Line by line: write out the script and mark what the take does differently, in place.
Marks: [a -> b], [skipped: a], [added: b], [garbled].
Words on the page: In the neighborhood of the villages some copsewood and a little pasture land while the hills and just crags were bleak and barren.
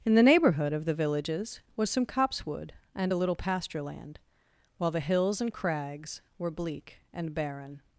In the neighborhood of the villages [added: was] some copsewood and a little pasture land while the hills and [skipped: just] crags were bleak and barren.